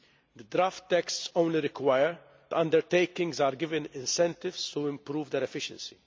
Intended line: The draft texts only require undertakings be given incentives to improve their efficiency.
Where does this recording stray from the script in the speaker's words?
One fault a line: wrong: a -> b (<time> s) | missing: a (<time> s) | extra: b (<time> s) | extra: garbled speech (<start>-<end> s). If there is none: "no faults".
no faults